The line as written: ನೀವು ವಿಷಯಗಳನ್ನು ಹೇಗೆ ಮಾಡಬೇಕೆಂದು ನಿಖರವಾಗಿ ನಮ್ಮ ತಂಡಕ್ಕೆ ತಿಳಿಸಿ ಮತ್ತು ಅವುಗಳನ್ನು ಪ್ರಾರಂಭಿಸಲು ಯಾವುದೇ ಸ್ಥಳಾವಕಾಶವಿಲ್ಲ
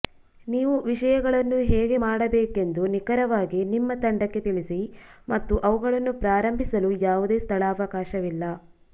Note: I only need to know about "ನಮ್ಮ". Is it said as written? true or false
false